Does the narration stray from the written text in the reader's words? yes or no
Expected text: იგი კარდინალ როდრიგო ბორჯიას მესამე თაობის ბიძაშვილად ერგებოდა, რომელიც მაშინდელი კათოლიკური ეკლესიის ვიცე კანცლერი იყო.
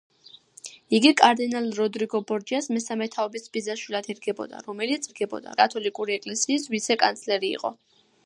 yes